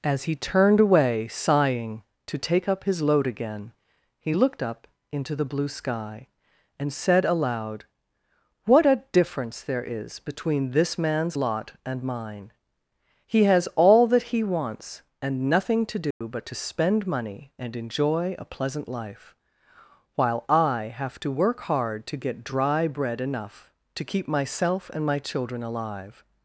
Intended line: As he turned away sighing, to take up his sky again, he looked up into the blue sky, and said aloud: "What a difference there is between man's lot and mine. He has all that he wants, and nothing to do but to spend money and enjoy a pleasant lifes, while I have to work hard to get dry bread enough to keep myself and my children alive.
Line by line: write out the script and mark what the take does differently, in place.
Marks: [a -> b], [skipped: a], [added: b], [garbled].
As he turned away sighing, to take up his [sky -> load] again, he looked up into the blue sky, and said aloud: "What a difference there is between [added: this] man's lot and mine. He has all that he wants, and nothing to do but to spend money and enjoy a pleasant [lifes, -> life] while I have to work hard to get dry bread enough to keep myself and my children alive.